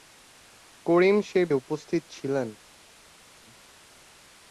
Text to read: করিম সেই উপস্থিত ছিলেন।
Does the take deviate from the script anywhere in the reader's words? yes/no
no